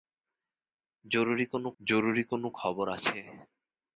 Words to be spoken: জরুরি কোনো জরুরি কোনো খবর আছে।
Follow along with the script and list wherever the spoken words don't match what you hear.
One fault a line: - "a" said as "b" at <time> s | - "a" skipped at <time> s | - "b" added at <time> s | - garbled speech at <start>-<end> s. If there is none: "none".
none